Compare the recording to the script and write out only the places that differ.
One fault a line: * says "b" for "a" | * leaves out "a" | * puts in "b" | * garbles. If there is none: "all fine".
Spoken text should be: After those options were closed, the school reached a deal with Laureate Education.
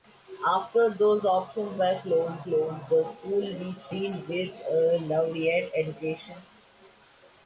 * puts in "closed"
* leaves out "a"